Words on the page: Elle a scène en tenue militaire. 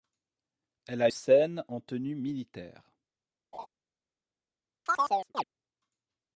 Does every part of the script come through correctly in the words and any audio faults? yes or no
no